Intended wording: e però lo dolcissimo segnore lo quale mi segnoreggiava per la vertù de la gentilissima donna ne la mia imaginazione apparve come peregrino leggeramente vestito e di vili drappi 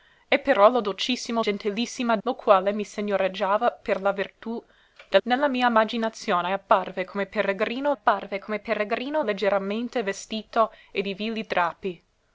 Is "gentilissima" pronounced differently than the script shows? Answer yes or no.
yes